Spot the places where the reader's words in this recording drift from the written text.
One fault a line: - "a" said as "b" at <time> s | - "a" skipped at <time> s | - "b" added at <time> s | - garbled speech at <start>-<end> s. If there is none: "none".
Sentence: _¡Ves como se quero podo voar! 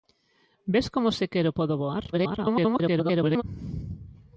- garbled speech at 2.1-3.4 s